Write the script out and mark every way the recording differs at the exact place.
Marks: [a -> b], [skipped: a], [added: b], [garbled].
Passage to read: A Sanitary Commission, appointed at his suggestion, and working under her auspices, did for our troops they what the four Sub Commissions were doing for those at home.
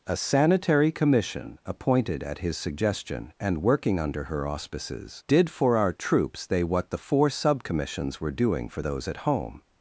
A Sanitary Commission, appointed at his suggestion, and working under her auspices, did for our troops they what the four Sub Commissions were doing for those at home.